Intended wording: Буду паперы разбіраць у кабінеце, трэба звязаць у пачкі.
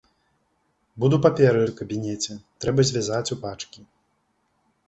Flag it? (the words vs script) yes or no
yes